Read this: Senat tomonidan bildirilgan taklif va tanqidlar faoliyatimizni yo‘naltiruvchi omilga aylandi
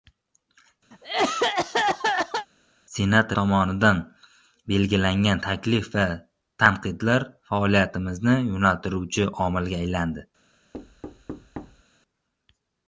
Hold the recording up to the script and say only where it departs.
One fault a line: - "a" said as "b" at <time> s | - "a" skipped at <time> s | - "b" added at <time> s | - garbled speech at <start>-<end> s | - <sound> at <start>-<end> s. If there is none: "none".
- cough at 0.9-2.5 s
- thud at 10.7-11.8 s